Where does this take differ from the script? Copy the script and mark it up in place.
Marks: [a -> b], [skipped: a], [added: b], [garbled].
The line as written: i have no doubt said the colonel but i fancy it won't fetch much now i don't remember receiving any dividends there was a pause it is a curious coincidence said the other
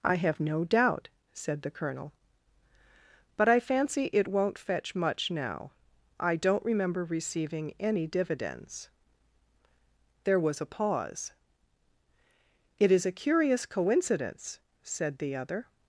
i have no doubt said the colonel but i fancy it won't fetch much now i don't remember receiving any dividends there was a pause it is a curious coincidence said the other